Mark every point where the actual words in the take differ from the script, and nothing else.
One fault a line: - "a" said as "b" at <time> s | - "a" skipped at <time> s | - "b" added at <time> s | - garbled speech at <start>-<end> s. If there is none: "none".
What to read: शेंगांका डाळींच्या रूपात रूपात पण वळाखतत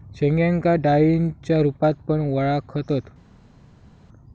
- "रूपात" skipped at 1.9 s